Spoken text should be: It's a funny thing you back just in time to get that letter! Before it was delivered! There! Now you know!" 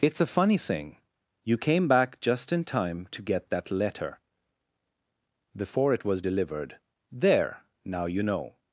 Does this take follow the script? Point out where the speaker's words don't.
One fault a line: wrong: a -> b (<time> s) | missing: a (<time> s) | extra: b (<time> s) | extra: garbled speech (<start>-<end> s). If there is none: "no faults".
extra: came (1.6 s)